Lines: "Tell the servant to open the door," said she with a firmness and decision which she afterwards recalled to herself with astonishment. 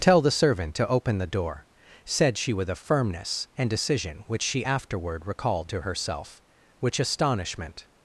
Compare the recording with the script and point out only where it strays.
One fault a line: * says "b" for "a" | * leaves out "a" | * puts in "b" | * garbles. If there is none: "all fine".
* says "afterward" for "afterwards"
* says "which" for "with"